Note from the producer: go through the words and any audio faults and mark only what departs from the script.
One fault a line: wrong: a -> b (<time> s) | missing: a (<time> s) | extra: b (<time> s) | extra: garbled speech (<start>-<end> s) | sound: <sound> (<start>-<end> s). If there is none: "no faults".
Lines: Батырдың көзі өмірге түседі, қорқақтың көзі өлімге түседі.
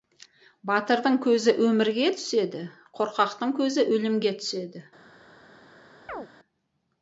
sound: chirp (6.1-6.3 s)